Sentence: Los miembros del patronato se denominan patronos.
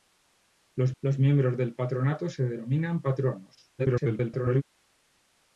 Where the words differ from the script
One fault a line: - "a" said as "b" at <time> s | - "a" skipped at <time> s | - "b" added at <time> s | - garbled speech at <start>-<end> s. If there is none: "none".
- "los" added at 1.0 s
- garbled speech at 3.8-4.6 s